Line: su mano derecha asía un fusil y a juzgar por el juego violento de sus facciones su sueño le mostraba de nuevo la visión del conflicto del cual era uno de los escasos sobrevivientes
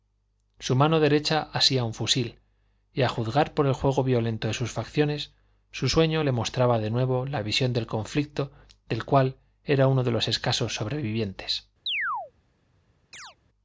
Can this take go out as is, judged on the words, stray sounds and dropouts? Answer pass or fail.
fail